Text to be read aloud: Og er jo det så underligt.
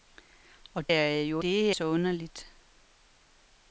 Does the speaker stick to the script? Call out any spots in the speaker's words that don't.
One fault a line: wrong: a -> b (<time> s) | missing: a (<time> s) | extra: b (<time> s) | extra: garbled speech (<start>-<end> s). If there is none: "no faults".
no faults